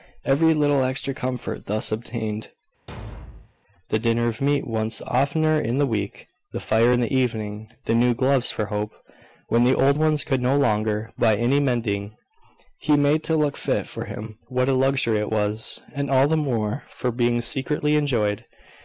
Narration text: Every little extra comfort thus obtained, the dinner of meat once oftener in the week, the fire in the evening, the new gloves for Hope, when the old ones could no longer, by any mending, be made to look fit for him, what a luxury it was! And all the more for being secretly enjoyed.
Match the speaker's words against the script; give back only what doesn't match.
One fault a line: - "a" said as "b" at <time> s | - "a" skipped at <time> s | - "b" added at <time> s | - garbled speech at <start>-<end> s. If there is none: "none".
none